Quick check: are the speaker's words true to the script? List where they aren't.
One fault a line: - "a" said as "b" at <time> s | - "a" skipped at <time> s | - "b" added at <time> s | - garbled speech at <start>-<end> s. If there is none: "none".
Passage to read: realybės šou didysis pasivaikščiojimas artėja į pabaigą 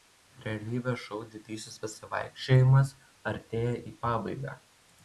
none